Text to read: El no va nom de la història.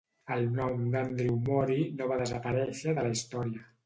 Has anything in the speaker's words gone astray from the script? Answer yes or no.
yes